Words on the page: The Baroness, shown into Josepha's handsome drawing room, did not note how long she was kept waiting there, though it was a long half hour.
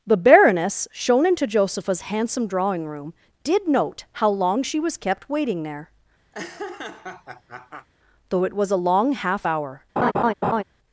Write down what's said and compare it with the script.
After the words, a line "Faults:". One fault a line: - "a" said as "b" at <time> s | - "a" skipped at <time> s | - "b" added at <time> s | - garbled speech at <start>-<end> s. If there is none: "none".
The Baroness, shown into Josepha's handsome drawing room, did note how long she was kept waiting there, though it was a long half hour.
Faults:
- "not" skipped at 3.7 s